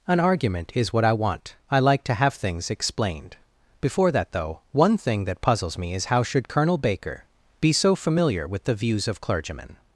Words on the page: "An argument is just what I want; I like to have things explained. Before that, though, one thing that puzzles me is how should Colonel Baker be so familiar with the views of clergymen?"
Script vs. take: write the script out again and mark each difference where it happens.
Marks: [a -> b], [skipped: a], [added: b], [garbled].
"An argument is [skipped: just] what I want; I like to have things explained. Before that, though, one thing that puzzles me is how should Colonel Baker be so familiar with the views of clergymen?"